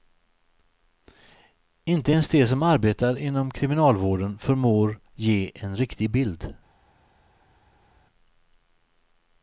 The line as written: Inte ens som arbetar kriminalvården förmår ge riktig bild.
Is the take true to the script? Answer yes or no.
no